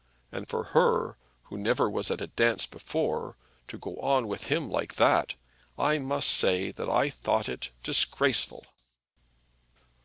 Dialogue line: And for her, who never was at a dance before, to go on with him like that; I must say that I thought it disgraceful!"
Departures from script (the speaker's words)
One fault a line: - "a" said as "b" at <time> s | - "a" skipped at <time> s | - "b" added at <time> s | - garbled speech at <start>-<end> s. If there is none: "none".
none